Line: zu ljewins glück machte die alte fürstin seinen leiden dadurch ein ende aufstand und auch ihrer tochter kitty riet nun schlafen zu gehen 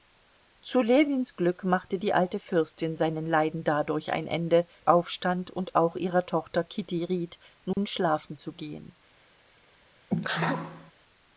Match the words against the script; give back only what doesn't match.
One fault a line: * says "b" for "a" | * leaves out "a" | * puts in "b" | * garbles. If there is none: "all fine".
all fine